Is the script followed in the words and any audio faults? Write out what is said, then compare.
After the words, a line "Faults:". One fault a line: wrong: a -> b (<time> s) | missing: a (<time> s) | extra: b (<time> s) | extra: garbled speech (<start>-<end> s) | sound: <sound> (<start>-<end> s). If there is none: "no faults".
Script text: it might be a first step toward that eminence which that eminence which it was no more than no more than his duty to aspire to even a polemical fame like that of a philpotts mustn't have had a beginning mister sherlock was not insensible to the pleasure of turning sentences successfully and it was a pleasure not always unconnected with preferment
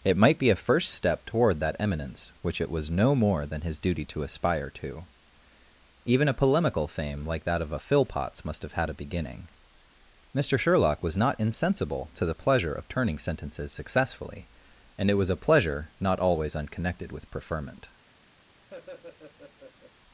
it might be a first step toward that eminence which it was no more than his duty to aspire to even a polemical fame like that of a philpotts must have had a beginning mister sherlock was not insensible to the pleasure of turning sentences successfully and it was a pleasure not always unconnected with preferment
Faults:
missing: that eminence which (2.6 s)
missing: no more than (3.6 s)
wrong: mustn't -> must (8.4 s)
sound: laugh (18.7-19.9 s)